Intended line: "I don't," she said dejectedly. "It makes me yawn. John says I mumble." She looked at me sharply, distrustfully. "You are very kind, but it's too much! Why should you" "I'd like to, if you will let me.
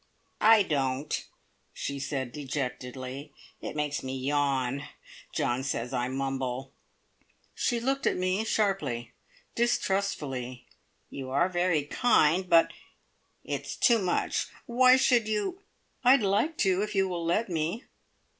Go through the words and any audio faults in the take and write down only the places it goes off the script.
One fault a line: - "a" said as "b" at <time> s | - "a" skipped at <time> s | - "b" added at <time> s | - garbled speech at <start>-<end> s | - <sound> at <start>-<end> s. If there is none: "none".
none